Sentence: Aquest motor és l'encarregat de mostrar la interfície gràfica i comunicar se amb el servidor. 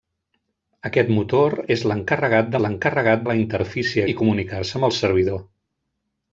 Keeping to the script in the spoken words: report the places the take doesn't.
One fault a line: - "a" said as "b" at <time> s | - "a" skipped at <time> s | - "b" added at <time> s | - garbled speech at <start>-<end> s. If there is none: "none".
- "mostrar" said as "l'encarregat" at 2.6 s
- "gràfica" skipped at 4.1 s